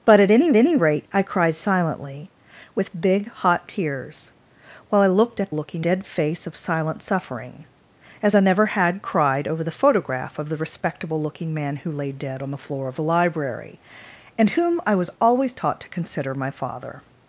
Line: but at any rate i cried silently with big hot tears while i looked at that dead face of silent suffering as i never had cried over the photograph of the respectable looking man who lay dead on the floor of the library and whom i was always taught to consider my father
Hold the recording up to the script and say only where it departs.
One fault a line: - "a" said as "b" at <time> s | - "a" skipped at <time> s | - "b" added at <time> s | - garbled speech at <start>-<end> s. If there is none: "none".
- "any" added at 0.6 s
- "that" said as "looking" at 5.5 s